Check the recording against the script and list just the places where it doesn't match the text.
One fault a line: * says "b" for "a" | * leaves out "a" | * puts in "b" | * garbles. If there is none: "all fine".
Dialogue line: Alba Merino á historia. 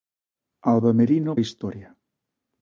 all fine